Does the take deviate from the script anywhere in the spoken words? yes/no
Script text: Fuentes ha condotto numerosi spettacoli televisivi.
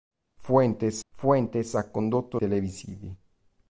yes